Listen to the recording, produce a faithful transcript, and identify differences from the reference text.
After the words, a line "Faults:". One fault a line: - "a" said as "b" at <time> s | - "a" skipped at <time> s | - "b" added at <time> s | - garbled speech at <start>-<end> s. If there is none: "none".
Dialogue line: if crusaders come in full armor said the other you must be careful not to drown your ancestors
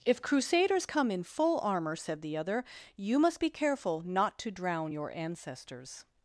if crusaders come in full armor said the other you must be careful not to drown your ancestors
Faults:
none